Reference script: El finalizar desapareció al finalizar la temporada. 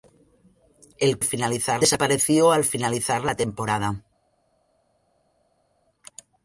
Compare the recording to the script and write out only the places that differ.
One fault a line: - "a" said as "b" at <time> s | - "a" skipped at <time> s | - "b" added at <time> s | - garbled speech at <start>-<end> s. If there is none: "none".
none